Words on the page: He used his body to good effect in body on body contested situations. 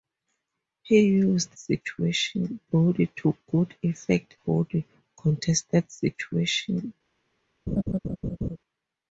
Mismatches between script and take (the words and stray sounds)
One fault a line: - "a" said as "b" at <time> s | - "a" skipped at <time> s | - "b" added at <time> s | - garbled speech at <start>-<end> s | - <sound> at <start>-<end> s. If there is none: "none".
- "his" said as "situations" at 1.6 s
- "in body on" skipped at 4.4 s
- laugh at 7.7-8.6 s